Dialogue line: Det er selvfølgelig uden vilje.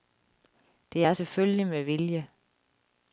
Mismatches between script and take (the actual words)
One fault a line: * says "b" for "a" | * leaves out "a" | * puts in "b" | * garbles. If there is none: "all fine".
* says "med" for "uden"